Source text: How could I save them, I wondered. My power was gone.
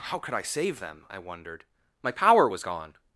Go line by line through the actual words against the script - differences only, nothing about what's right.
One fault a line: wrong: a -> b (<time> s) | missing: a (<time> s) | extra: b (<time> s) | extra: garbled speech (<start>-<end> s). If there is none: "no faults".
no faults